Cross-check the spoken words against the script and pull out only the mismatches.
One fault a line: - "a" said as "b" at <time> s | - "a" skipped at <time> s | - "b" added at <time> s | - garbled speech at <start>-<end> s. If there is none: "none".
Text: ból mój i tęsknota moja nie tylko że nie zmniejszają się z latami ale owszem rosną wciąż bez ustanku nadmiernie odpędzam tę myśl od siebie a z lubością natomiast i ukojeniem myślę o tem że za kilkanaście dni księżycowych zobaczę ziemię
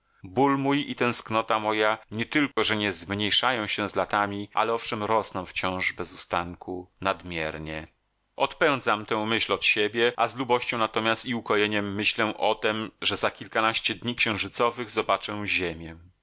none